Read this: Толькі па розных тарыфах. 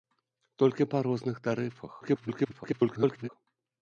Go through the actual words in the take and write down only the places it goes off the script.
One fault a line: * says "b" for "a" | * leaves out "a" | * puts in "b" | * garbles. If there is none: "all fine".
* garbles